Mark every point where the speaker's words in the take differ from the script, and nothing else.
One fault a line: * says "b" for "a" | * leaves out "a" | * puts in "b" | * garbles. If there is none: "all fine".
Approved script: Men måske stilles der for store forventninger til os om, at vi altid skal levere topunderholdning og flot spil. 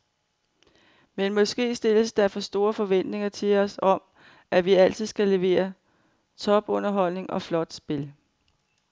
all fine